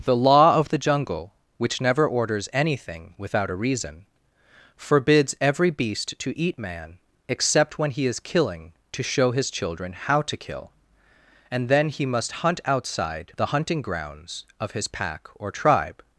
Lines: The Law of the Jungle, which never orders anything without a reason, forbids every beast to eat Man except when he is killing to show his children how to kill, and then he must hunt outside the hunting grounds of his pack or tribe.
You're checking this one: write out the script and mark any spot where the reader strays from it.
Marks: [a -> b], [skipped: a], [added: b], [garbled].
The Law of the Jungle, which never orders anything without a reason, forbids every beast to eat Man except when he is killing to show his children how to kill, and then he must hunt outside the hunting grounds of his pack or tribe.